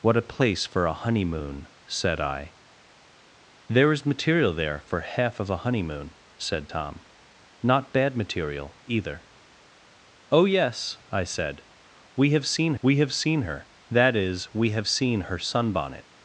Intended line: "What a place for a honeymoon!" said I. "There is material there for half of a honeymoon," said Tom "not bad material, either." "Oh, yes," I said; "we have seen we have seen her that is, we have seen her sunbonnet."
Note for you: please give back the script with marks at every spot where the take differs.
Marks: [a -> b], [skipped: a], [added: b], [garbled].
"What a place for a honeymoon!" said I. "There is material there for half of a honeymoon," said Tom "not bad material, either." "Oh, yes," I said; "we have seen we have seen her that is, we have seen her sunbonnet."